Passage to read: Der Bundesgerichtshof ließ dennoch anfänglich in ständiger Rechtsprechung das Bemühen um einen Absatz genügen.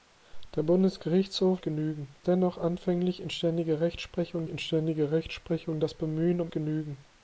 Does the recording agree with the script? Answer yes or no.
no